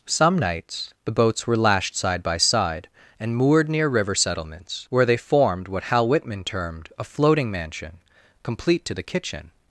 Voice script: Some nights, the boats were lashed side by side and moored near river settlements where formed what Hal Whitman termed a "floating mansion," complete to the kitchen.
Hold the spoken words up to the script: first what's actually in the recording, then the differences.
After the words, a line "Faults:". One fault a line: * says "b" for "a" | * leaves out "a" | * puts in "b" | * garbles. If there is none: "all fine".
Some nights, the boats were lashed side by side and moored near river settlements where they formed what Hal Whitman termed a "floating mansion," complete to the kitchen.
Faults:
* puts in "they"